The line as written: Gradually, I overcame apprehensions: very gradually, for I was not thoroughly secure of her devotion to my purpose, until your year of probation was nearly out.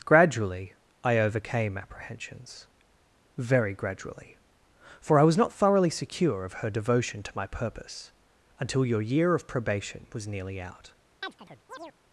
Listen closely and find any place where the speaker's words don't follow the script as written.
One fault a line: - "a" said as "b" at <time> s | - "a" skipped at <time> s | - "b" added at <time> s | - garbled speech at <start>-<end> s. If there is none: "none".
none